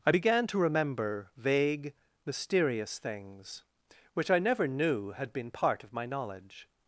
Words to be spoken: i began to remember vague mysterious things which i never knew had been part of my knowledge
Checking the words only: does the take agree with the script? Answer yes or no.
yes